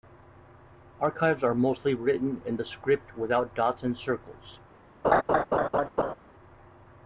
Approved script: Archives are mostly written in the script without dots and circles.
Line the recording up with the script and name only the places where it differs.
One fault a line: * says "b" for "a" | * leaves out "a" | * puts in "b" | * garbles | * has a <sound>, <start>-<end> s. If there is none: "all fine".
* has a laugh, 5.0-6.1 s